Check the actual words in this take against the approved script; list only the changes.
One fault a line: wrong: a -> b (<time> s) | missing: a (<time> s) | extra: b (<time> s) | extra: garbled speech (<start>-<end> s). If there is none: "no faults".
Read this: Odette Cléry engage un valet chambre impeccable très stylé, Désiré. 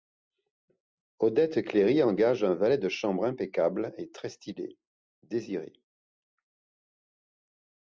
extra: de (2.8 s)
extra: et (4.0 s)